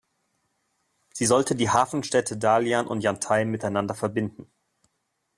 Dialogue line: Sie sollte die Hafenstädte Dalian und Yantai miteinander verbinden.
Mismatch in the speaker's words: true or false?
false